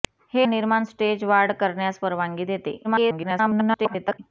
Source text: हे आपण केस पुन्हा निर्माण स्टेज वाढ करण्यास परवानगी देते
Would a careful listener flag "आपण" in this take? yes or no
yes